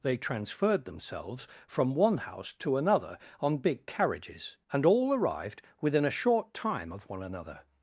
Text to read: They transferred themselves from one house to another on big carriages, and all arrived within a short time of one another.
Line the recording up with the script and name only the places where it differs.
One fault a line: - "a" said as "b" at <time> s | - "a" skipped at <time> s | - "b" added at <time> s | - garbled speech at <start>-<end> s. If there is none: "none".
none